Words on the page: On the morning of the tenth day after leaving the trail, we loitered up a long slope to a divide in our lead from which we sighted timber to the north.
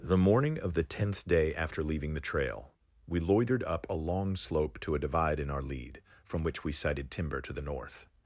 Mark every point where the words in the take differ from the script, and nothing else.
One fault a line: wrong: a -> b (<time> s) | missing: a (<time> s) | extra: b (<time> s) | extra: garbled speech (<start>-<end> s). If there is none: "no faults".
missing: On (0.0 s)